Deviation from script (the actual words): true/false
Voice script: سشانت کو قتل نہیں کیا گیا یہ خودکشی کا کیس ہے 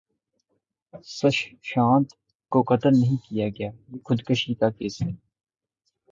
false